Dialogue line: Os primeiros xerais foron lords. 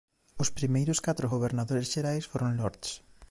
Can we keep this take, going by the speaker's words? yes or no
no